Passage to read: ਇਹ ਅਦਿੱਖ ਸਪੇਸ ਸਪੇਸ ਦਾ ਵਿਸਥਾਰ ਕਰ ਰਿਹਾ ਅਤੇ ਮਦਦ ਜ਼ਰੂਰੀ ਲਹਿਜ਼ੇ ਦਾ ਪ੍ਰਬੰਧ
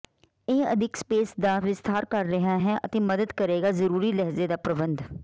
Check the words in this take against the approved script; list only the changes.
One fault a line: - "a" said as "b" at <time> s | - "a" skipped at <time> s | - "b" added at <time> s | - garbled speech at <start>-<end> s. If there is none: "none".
- "ਸਪੇਸ" skipped at 1.3 s
- "ਹੈ" added at 2.6 s
- "ਕਰੇਗਾ" added at 3.4 s